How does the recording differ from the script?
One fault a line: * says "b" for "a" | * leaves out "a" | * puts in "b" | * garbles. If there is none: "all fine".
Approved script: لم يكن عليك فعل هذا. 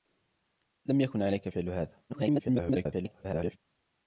* garbles